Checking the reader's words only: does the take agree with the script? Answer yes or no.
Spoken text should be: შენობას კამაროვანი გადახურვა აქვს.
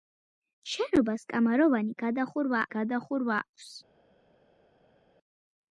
no